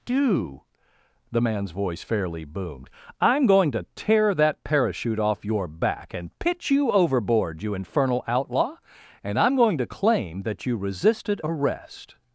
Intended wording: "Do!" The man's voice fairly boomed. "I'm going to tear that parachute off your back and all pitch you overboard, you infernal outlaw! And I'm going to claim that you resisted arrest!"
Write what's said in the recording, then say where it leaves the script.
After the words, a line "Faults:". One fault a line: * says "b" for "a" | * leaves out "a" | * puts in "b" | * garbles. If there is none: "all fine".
"Do!" The man's voice fairly boomed. "I'm going to tear that parachute off your back and pitch you overboard, you infernal outlaw! And I'm going to claim that you resisted arrest!"
Faults:
* leaves out "all"